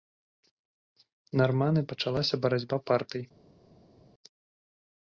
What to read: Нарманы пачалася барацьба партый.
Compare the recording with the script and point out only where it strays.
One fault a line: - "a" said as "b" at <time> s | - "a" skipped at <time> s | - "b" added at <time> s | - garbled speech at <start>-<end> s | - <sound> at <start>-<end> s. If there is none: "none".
none